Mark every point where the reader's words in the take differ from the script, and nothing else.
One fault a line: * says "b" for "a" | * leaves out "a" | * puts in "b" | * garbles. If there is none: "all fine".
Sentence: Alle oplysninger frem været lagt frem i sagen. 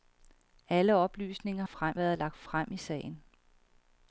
all fine